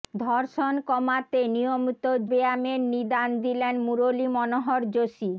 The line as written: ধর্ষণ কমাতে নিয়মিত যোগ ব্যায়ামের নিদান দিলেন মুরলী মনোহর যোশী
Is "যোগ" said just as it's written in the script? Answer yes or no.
no